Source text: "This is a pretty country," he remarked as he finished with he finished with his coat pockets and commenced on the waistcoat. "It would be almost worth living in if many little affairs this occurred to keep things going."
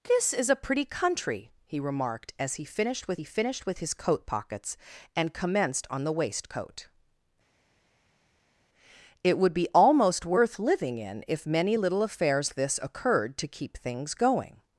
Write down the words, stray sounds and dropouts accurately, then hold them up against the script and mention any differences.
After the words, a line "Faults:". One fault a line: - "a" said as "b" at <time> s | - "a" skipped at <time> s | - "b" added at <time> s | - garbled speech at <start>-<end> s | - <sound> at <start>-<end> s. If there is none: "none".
"This is a pretty country," he remarked as he finished with he finished with his coat pockets and commenced on the waistcoat. "It would be almost worth living in if many little affairs this occurred to keep things going."
Faults:
none